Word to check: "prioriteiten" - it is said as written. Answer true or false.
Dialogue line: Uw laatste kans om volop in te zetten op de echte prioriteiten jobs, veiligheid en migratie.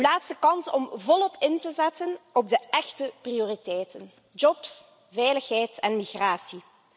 true